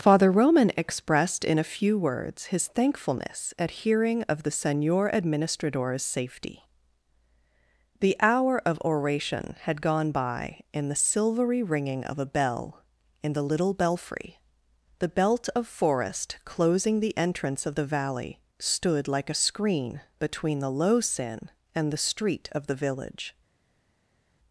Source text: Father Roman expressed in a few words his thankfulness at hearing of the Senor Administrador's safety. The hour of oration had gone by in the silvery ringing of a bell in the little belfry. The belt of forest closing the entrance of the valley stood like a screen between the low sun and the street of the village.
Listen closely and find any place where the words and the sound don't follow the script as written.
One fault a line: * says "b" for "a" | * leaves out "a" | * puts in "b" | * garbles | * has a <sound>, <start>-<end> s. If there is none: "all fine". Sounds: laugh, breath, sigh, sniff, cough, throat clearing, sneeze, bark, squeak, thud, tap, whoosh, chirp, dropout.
* says "sin" for "sun"